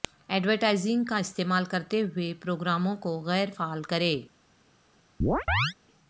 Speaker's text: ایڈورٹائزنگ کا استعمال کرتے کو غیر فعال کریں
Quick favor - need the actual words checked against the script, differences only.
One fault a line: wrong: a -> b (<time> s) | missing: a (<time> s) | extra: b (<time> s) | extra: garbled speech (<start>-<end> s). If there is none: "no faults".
extra: ہوئے پروگراموں (2.0 s)